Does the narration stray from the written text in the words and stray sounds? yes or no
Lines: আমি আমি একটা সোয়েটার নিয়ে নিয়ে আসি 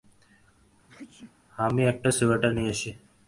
yes